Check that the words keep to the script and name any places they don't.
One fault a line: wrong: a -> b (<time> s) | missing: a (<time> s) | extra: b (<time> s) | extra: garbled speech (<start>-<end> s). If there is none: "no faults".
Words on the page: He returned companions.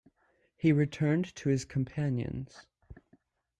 extra: to his (1.4 s)